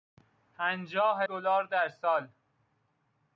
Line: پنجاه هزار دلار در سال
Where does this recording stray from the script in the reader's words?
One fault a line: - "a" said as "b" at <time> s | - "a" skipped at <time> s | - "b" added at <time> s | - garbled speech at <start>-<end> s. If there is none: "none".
- "هزار" skipped at 1.2 s